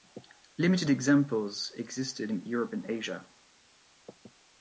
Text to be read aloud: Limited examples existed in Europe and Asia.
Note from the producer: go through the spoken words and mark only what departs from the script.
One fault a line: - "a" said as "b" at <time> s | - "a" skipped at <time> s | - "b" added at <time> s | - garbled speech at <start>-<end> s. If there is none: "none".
none